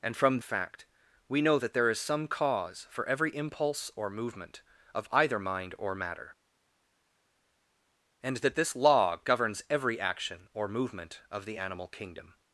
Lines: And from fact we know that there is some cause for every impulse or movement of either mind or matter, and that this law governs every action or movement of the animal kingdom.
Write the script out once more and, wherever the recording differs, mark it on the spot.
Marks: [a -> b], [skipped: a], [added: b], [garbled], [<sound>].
And from fact we know that there is some cause for every impulse or movement of either mind or matter, and that this law governs every action or movement of the animal kingdom.